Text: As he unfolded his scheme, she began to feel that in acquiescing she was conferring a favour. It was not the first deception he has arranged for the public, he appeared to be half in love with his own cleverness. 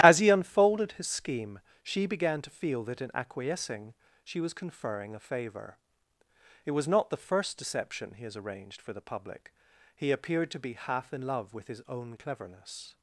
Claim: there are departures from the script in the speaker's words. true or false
false